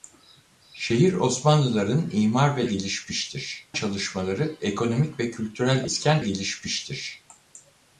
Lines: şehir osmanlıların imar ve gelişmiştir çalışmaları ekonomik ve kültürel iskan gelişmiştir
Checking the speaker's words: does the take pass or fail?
pass